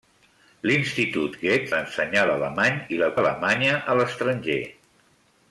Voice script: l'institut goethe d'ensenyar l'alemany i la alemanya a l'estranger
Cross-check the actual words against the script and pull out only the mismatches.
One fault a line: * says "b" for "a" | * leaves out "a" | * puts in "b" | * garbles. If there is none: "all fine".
all fine